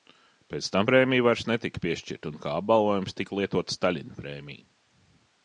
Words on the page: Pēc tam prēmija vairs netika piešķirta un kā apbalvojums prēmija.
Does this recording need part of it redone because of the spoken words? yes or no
yes